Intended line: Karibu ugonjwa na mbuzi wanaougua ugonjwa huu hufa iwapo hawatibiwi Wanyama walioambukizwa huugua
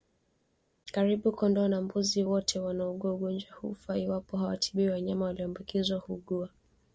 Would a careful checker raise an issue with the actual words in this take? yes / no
yes